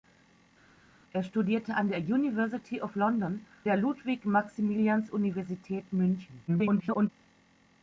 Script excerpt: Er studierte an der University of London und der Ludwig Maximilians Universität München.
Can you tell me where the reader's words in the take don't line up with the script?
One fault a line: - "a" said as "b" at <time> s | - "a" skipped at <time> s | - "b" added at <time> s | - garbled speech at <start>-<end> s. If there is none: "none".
- "und" skipped at 3.4 s
- garbled speech at 6.5-7.1 s